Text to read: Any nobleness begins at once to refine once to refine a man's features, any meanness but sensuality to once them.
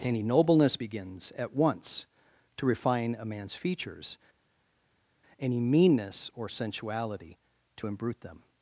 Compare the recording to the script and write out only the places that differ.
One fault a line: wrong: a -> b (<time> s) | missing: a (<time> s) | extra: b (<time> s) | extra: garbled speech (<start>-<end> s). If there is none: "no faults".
missing: once to refine (3.2 s)
wrong: but -> or (6.3 s)
wrong: once -> imbrute (7.8 s)